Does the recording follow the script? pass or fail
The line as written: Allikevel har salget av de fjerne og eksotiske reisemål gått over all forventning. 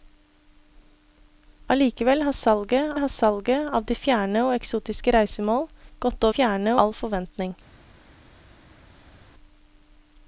fail